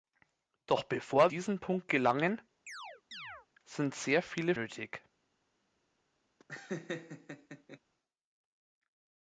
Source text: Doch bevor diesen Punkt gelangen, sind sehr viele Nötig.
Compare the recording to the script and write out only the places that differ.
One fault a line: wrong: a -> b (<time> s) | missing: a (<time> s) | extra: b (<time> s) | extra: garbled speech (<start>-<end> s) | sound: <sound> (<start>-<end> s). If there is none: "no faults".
sound: chirp (2.7-3.5 s)
sound: laugh (6.4-7.8 s)